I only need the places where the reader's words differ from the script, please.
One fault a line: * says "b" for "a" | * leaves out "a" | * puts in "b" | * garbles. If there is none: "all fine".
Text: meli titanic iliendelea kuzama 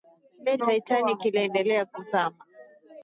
all fine